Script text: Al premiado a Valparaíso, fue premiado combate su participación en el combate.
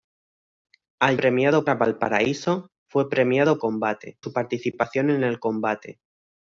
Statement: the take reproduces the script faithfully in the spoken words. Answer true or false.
true